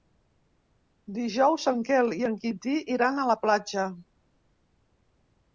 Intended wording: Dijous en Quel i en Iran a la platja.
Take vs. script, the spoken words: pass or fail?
fail